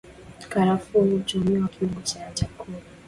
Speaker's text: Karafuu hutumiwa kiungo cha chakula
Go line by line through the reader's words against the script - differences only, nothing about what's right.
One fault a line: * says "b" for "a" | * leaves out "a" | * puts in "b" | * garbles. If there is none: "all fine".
all fine